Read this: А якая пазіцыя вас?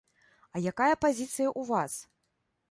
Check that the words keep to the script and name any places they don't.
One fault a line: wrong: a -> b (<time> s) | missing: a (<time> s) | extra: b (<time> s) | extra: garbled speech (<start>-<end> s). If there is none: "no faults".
extra: ў (1.5 s)